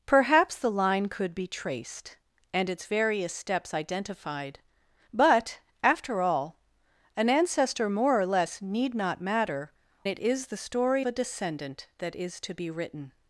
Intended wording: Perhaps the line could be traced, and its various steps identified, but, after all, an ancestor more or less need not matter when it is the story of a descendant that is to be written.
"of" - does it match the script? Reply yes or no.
no